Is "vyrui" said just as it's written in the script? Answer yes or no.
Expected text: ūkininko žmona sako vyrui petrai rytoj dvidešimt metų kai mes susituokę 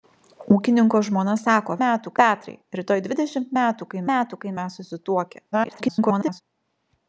no